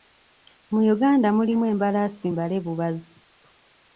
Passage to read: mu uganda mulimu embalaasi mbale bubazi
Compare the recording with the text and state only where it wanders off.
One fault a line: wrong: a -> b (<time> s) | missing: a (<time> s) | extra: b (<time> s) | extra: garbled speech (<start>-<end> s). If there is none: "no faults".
no faults